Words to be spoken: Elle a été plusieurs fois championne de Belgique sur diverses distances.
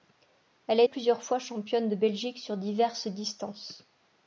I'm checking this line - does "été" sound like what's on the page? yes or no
no